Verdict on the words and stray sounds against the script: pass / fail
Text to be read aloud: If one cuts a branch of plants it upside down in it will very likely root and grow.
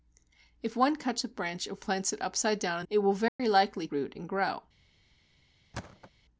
fail